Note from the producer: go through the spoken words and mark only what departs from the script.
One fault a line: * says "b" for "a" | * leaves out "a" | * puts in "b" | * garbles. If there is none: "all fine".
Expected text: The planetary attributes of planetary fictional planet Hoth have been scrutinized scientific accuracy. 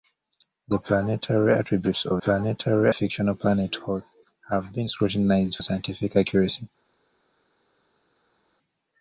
all fine